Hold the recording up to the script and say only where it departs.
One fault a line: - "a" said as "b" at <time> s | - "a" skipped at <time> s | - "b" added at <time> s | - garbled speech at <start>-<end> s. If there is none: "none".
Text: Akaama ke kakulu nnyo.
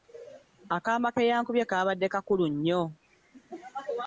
- "yankubye kaabadde" added at 1.3 s